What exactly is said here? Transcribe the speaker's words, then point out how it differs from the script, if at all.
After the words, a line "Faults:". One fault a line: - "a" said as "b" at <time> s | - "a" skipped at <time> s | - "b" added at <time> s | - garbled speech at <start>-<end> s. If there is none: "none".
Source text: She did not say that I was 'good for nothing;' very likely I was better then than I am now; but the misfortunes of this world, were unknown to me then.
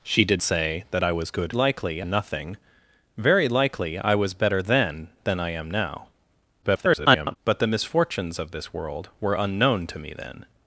She did say that I was 'good likely nothing;' very likely I was better then than I am now; [garbled] but the misfortunes of this world, were unknown to me then.
Faults:
- "not" skipped at 0.4 s
- "for" said as "likely" at 1.5 s
- garbled speech at 6.6-7.4 s